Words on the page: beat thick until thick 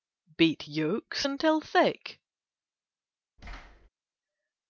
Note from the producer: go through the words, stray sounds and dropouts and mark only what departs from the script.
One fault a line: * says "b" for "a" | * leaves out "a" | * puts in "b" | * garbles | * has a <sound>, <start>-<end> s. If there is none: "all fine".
* says "yolks" for "thick"
* has a thud, 3.4-3.9 s